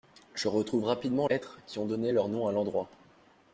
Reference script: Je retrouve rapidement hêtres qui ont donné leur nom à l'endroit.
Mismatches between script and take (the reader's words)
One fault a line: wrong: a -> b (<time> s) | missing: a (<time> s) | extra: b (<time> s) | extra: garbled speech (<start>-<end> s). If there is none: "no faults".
no faults